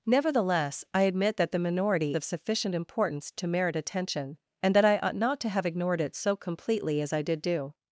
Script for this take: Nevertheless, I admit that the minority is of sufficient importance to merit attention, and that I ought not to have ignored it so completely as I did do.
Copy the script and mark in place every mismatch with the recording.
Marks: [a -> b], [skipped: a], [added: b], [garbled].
Nevertheless, I admit that the minority [skipped: is] of sufficient importance to merit attention, and that I ought not to have ignored it so completely as I did do.